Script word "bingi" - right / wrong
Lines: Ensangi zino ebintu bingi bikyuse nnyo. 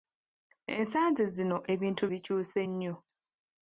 wrong